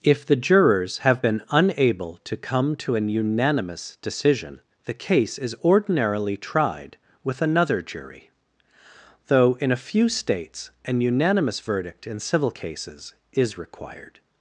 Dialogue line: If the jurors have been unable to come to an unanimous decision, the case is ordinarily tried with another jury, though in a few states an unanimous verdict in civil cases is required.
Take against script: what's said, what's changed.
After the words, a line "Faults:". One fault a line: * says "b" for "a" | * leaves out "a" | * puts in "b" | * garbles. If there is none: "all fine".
If the jurors have been unable to come to an unanimous decision, the case is ordinarily tried with another jury, though in a few states an unanimous verdict in civil cases is required.
Faults:
all fine